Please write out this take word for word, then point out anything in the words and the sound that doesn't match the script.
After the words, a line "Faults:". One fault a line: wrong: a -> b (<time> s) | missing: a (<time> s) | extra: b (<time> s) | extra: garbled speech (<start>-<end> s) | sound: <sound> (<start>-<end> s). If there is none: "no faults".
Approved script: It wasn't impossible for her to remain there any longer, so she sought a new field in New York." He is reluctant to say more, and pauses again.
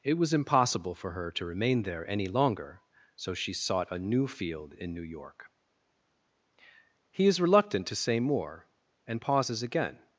It was impossible for her to remain there any longer, so she sought a new field in New York." He is reluctant to say more, and pauses again.
Faults:
wrong: wasn't -> was (0.2 s)